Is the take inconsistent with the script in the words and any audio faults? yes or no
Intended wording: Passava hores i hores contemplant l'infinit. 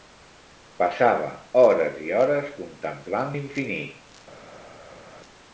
no